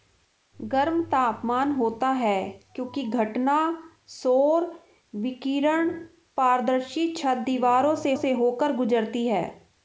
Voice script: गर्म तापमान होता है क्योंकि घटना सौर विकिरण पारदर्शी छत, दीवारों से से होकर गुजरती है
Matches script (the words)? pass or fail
pass